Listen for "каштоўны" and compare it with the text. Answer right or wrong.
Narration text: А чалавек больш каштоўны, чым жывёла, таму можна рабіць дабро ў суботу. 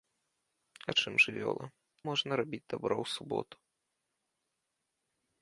wrong